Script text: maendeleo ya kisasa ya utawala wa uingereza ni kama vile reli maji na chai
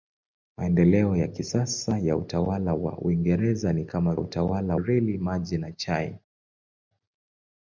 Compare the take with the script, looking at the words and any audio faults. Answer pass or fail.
fail